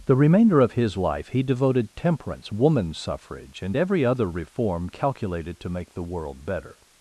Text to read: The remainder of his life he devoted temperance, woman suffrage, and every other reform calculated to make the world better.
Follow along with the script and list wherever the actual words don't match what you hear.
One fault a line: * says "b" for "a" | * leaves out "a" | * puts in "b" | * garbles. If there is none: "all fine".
all fine